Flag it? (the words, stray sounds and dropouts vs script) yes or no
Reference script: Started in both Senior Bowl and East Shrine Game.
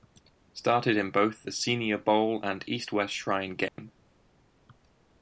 yes